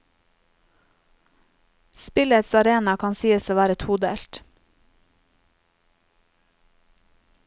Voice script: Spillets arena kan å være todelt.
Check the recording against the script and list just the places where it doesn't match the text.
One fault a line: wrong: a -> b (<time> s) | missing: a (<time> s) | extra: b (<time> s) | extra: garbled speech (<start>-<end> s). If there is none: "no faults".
extra: sies (3.1 s)